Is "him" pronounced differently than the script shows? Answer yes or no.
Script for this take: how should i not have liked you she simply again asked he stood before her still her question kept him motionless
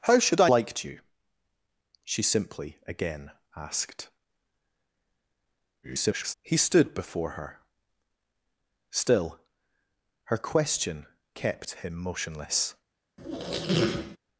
no